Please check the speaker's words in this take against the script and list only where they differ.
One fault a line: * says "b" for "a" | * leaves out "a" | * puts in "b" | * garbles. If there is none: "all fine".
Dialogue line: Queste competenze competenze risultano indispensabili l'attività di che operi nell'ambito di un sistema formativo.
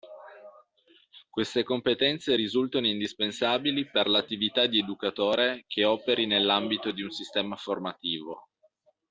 * leaves out "competenze"
* puts in "per"
* puts in "educatore"